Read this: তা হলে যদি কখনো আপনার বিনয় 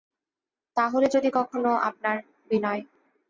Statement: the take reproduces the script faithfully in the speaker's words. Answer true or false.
true